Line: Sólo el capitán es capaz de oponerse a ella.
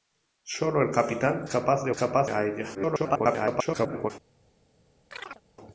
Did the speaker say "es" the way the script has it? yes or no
no